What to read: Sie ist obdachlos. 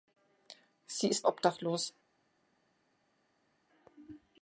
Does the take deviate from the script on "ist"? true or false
false